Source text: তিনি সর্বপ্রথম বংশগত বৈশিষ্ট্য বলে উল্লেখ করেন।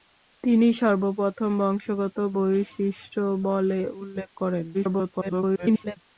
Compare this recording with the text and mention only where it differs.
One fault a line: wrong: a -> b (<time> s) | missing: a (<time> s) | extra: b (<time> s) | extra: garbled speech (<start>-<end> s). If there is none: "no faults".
extra: garbled speech (4.7-6.0 s)